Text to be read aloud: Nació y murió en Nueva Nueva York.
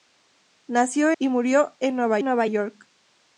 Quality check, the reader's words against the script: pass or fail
pass